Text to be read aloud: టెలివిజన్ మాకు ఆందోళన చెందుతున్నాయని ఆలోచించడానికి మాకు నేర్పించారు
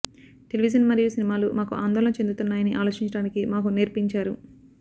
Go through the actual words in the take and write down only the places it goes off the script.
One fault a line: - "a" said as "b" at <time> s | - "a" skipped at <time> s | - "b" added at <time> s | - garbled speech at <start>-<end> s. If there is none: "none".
- "మరియు సినిమాలు" added at 0.9 s